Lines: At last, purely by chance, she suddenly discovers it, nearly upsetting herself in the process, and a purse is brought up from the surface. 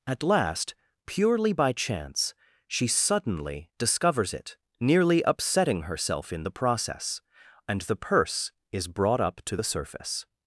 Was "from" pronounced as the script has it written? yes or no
no